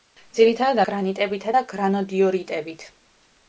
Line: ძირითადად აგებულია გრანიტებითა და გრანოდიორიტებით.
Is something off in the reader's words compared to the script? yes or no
yes